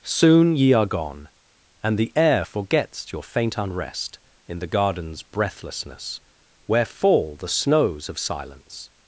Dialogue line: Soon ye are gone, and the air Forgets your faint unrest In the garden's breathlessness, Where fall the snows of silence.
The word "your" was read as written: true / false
true